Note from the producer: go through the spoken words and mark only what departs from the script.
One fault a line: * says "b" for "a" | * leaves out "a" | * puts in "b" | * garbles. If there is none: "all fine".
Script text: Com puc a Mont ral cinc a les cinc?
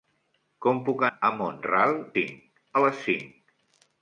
all fine